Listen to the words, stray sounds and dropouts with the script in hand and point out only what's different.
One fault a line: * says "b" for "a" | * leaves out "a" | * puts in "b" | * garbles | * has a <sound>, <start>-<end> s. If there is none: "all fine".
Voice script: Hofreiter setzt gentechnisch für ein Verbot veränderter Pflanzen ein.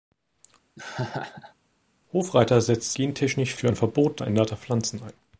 * has a laugh, 0.8-1.5 s